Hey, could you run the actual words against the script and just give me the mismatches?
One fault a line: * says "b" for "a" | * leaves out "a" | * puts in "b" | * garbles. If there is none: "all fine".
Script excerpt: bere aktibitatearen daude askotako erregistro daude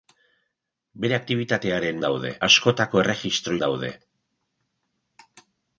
all fine